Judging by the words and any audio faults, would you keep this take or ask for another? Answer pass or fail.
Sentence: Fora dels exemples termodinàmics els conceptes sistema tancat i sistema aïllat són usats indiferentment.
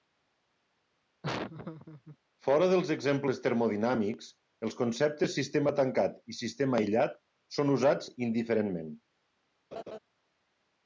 fail